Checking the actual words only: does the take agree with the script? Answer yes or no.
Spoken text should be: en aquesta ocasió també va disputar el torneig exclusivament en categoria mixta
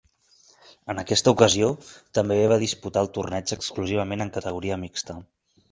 yes